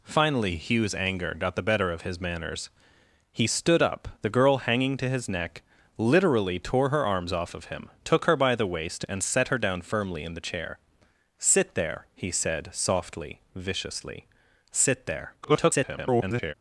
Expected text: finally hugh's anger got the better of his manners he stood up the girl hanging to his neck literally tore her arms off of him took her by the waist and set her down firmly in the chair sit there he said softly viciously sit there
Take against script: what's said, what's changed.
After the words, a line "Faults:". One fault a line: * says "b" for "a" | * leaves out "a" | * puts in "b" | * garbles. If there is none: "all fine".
finally hugh's anger got the better of his manners he stood up the girl hanging to his neck literally tore her arms off of him took her by the waist and set her down firmly in the chair sit there he said softly viciously sit there [garbled]
Faults:
* garbles